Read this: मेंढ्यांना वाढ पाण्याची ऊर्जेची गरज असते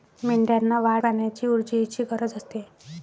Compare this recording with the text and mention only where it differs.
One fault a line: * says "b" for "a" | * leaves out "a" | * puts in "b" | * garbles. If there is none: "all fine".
all fine